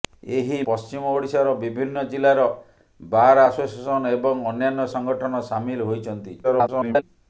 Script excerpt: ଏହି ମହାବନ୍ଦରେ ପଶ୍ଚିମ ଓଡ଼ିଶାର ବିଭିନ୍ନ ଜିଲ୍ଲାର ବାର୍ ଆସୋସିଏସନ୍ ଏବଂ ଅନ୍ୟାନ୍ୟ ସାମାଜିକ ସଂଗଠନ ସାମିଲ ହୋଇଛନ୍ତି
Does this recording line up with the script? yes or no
no